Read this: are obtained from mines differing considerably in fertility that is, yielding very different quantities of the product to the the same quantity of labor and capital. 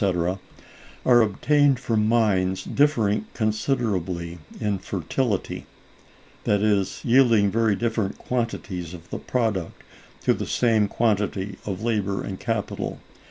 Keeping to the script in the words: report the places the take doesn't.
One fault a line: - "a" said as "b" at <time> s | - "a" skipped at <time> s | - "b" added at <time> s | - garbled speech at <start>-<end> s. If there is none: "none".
- "the" skipped at 10.5 s